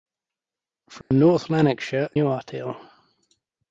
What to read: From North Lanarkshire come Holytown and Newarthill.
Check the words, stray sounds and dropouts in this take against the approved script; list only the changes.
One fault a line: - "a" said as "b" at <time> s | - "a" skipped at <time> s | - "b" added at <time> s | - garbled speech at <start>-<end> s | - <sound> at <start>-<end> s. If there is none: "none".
- dropout at 1.0-1.1 s
- "come Holytown and" skipped at 2.1 s